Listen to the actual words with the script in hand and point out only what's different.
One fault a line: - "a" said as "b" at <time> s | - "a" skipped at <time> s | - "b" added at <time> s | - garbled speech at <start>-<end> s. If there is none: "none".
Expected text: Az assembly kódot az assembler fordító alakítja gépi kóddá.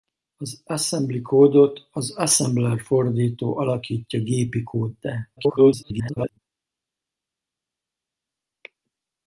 - garbled speech at 5.4-6.4 s